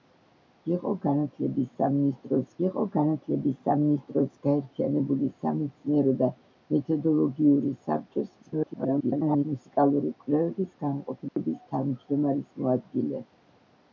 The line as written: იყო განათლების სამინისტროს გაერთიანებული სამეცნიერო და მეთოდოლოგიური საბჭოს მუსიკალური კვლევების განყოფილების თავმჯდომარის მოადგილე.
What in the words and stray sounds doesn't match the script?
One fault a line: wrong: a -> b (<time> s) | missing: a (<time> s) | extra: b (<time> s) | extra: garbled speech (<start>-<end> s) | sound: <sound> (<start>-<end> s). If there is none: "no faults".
extra: იყო განათლების სამინისტროს (2.7 s)
extra: garbled speech (8.4-9.5 s)
sound: dropout (11.3-11.4 s)